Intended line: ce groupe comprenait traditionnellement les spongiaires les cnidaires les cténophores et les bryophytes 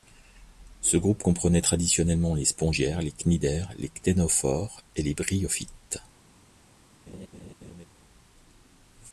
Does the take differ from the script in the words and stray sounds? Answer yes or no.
yes